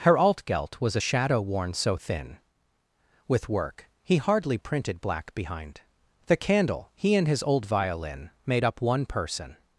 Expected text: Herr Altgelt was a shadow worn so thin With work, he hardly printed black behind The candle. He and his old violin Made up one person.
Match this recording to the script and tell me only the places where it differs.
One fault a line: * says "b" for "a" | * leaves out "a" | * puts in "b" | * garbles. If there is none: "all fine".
all fine